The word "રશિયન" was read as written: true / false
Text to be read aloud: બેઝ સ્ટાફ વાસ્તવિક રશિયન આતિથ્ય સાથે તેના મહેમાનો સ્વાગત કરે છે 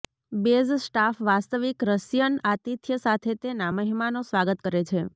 true